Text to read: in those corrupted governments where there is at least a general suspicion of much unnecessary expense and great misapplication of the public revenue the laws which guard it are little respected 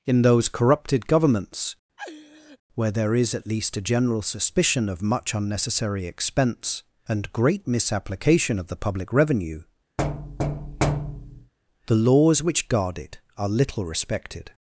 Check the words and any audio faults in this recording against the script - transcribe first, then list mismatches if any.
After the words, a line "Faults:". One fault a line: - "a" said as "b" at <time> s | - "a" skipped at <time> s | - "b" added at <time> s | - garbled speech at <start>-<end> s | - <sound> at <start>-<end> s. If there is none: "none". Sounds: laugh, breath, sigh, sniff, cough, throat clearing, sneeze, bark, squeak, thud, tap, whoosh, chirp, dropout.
in those corrupted governments where there is at least a general suspicion of much unnecessary expense and great misapplication of the public revenue the laws which guard it are little respected
Faults:
- laugh at 2.0-2.6 s
- thud at 10.0-11.5 s